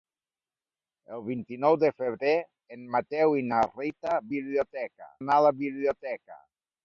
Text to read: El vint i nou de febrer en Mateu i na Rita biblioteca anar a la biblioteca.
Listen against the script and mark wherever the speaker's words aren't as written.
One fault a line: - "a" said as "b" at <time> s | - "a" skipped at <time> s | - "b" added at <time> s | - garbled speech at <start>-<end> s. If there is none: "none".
none